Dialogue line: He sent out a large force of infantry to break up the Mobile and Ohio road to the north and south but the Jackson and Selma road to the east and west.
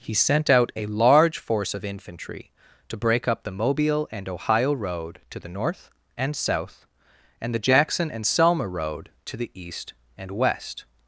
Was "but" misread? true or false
true